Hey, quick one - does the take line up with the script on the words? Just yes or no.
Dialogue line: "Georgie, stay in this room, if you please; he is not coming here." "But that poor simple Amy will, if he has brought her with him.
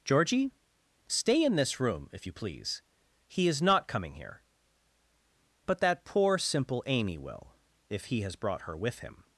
yes